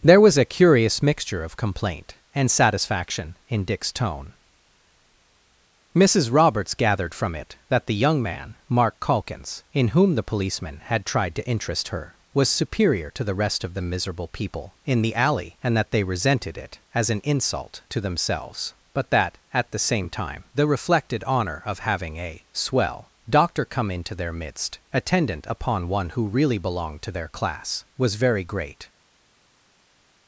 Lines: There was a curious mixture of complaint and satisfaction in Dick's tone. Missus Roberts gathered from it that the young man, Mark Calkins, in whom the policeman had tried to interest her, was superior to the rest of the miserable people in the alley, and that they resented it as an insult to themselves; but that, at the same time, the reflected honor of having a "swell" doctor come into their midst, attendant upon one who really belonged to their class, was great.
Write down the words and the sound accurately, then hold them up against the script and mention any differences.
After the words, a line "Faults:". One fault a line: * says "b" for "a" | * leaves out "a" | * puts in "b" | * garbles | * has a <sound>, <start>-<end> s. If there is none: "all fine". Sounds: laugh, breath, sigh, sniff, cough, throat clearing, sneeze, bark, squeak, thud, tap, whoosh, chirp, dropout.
There was a curious mixture of complaint and satisfaction in Dick's tone. Missus Roberts gathered from it that the young man, Mark Calkins, in whom the policeman had tried to interest her, was superior to the rest of the miserable people in the alley, and that they resented it as an insult to themselves; but that, at the same time, the reflected honor of having a "swell" doctor come into their midst, attendant upon one who really belonged to their class, was very great.
Faults:
* puts in "very"